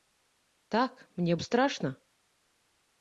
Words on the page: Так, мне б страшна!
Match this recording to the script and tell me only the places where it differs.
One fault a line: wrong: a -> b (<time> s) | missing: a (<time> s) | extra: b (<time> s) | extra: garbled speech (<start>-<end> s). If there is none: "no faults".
no faults